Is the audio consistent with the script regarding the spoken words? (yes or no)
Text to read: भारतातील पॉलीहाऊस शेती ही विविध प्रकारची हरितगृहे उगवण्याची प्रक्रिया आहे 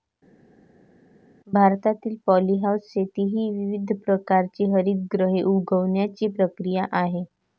yes